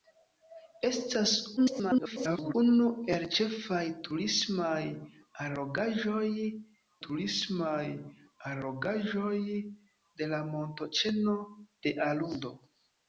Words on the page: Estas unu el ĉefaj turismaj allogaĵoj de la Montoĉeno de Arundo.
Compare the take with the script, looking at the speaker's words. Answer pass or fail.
fail